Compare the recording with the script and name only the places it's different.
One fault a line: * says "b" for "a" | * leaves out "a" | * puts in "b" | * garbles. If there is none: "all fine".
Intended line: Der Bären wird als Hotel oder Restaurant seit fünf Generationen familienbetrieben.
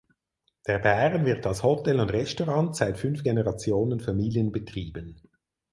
* says "und" for "oder"